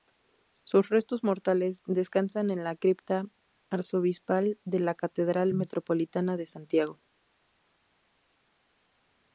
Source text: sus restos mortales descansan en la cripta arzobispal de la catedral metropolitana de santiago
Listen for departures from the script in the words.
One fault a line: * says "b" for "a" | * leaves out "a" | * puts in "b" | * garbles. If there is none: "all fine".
all fine